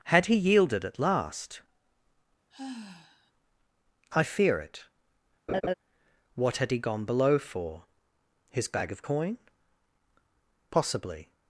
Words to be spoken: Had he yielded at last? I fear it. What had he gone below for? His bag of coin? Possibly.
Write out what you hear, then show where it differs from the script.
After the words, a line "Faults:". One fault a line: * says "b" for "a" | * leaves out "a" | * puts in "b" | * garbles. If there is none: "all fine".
Had he yielded at last? I fear it. What had he gone below for? His bag of coin? Possibly.
Faults:
all fine